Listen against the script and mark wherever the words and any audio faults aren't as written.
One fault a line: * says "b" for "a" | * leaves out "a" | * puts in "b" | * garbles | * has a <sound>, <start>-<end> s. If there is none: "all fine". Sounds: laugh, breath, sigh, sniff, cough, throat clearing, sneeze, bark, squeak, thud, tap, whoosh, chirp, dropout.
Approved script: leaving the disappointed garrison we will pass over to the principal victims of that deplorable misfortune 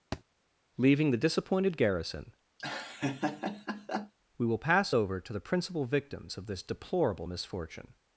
* has a thud, 0.1-0.2 s
* has a laugh, 2.6-4.1 s
* says "this" for "that"